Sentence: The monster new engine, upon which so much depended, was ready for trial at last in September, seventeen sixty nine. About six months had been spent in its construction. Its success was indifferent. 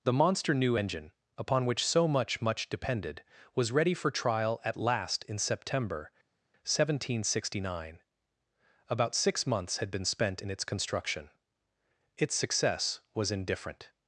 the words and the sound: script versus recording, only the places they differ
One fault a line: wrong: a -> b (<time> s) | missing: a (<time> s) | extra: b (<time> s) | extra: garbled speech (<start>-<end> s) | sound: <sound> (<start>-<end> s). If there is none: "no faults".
extra: much (2.4 s)